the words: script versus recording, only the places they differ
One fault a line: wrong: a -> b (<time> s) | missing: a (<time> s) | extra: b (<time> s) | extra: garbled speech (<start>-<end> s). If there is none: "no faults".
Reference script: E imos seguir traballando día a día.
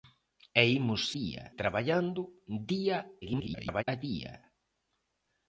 wrong: seguir -> día (1.2 s)
extra: garbled speech (3.2-3.8 s)